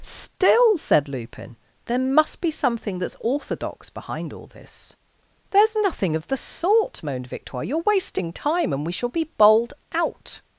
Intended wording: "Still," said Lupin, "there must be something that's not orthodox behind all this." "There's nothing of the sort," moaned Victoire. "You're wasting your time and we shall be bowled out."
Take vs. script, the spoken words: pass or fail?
fail